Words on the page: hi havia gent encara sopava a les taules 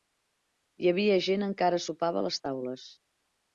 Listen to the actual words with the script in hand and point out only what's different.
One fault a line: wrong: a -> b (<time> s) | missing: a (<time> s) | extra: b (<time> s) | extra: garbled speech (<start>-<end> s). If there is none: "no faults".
no faults